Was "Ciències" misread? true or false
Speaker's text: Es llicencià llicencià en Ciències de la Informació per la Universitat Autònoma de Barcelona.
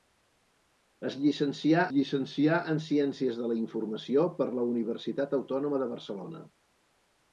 false